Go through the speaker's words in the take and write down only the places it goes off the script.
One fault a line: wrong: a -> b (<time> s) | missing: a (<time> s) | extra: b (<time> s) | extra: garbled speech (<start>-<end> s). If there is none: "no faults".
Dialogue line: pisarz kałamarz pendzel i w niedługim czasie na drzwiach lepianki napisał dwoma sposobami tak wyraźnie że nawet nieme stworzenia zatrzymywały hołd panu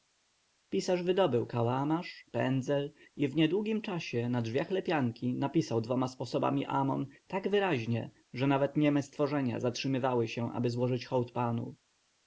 extra: wydobył (1.0 s)
extra: amon (6.7 s)
extra: się aby złożyć (10.3 s)